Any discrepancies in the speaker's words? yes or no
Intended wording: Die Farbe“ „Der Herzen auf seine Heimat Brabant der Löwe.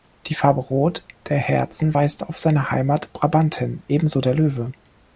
yes